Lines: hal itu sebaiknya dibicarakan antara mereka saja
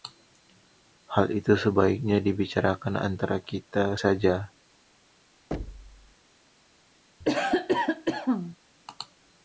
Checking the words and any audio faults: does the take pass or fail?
fail